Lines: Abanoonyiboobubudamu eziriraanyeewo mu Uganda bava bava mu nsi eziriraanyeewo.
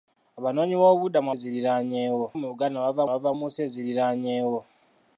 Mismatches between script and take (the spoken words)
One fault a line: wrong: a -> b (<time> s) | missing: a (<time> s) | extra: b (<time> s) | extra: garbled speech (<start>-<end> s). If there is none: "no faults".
no faults